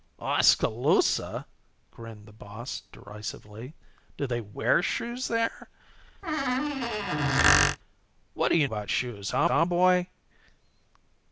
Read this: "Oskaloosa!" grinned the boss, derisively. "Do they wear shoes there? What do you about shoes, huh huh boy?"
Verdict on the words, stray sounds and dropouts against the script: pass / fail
fail